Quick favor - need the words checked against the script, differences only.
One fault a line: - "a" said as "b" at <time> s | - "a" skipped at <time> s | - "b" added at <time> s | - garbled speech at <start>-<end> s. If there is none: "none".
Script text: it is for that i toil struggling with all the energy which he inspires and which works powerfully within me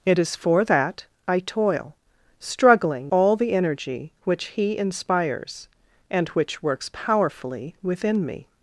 - "with" skipped at 3.1 s